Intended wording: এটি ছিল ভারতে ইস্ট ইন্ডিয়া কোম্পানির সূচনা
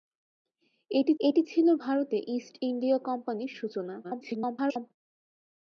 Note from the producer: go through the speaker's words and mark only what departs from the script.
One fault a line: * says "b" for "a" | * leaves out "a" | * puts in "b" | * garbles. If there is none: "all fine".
* puts in "এটি"
* garbles